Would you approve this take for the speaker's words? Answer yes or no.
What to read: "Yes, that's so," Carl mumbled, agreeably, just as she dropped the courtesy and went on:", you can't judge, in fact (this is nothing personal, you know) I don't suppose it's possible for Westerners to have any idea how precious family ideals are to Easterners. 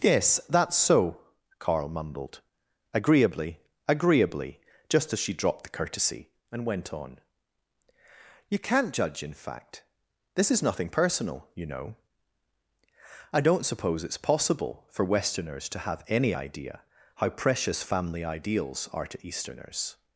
no